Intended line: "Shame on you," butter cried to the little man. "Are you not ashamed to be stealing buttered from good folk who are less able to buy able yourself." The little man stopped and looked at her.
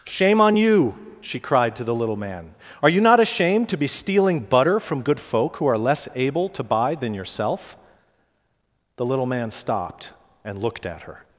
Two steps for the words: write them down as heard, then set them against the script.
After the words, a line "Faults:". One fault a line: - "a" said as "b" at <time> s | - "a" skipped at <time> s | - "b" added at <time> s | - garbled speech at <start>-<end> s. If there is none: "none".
"Shame on you," she cried to the little man. "Are you not ashamed to be stealing butter from good folk who are less able to buy than yourself." The little man stopped and looked at her.
Faults:
- "butter" said as "she" at 1.2 s
- "buttered" said as "butter" at 4.4 s
- "able" said as "than" at 7.0 s